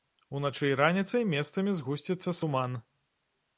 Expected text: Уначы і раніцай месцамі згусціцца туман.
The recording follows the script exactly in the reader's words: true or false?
true